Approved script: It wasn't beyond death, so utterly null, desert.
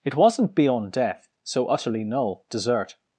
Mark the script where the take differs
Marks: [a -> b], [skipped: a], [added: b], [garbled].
It wasn't beyond death, so utterly null, desert.